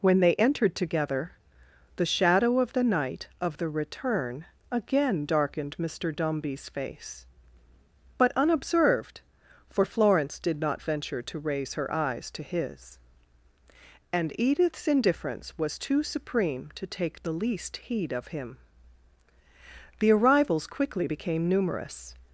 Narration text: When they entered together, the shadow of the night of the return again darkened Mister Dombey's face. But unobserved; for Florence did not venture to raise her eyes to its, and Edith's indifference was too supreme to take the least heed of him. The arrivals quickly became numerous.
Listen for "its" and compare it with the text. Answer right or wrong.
wrong